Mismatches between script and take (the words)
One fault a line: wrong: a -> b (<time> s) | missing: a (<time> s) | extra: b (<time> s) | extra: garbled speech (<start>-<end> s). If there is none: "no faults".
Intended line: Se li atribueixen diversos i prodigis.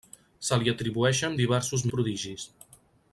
no faults